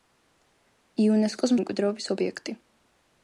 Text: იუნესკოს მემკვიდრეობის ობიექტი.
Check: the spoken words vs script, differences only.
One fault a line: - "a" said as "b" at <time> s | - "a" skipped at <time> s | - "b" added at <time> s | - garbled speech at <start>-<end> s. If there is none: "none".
none